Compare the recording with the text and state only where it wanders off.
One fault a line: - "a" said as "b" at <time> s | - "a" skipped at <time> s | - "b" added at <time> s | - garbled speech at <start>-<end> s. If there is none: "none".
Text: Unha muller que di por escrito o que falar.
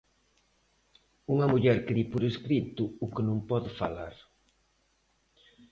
- "non pode" added at 3.3 s